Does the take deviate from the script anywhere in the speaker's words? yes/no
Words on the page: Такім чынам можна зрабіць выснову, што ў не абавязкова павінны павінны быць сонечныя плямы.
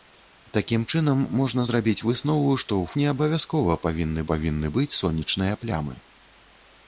no